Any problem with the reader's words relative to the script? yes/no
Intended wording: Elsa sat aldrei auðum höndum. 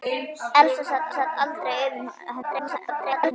yes